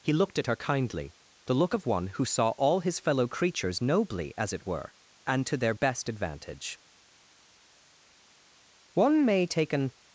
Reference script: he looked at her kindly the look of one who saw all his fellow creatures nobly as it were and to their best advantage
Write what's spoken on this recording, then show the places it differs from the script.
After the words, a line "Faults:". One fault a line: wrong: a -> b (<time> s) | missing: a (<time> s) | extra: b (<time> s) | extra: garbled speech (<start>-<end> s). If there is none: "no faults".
he looked at her kindly the look of one who saw all his fellow creatures nobly as it were and to their best advantage one may take an
Faults:
extra: one may take an (8.9 s)